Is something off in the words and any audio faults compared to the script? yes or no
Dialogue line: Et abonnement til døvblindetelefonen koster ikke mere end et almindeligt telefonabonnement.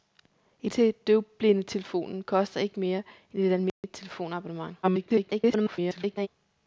yes